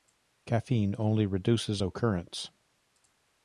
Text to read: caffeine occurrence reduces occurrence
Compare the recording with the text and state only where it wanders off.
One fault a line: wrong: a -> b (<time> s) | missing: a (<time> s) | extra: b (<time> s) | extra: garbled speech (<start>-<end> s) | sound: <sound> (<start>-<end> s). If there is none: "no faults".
wrong: occurrence -> only (1.0 s)